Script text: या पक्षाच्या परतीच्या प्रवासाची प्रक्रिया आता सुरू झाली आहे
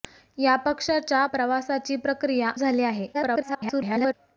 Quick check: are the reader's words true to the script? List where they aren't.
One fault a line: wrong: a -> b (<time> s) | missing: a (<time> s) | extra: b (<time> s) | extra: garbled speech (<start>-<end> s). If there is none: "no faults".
missing: परतीच्या (1.2 s)
missing: आता सुरू (2.5 s)
extra: garbled speech (3.1-4.1 s)